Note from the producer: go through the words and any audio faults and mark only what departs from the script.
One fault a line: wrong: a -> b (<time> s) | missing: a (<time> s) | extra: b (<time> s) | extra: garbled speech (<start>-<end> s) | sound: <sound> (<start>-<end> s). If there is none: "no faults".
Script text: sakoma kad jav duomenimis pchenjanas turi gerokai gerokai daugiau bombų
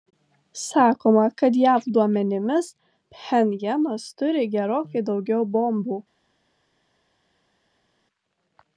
missing: gerokai (5.1 s)